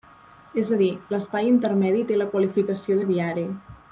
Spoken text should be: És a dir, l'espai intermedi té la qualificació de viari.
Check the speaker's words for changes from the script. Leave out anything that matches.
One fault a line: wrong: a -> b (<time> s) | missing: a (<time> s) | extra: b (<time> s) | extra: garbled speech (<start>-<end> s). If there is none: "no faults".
no faults